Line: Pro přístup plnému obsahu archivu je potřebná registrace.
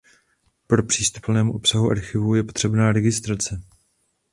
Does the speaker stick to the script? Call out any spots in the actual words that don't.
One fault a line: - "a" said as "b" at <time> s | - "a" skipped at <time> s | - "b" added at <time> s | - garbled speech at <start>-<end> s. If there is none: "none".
none